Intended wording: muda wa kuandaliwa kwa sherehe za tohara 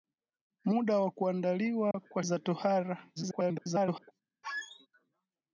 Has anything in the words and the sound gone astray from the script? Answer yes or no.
yes